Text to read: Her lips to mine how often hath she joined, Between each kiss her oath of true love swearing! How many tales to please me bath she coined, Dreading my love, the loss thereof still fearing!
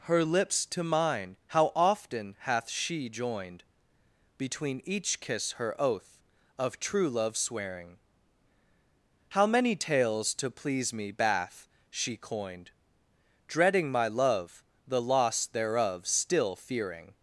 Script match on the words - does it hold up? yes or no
yes